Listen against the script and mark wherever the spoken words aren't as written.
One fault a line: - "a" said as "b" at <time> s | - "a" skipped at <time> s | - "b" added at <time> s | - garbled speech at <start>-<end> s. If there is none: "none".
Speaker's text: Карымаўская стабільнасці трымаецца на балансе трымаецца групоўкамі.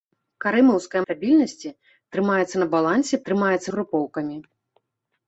none